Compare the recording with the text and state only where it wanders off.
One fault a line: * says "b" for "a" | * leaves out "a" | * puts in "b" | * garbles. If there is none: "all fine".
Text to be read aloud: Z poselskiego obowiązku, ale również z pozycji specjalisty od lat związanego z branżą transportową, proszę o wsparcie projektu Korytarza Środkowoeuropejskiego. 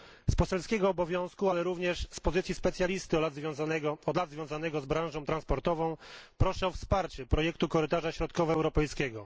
all fine